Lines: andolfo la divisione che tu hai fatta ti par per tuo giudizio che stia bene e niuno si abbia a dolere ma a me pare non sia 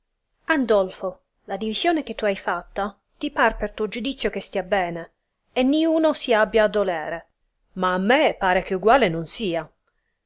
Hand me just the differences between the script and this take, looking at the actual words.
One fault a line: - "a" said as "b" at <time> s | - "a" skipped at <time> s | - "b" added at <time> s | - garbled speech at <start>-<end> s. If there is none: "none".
- "che uguale" added at 8.6 s